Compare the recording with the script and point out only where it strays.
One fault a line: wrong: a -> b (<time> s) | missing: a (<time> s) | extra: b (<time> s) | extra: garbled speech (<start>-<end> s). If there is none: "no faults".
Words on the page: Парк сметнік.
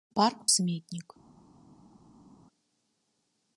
no faults